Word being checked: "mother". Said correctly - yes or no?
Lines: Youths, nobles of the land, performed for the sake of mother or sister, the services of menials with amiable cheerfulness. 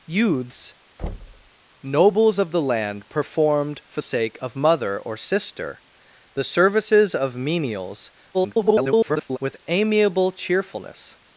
yes